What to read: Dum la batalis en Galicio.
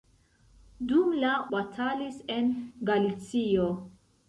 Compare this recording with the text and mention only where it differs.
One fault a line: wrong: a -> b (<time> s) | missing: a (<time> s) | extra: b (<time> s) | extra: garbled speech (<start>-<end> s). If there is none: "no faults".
no faults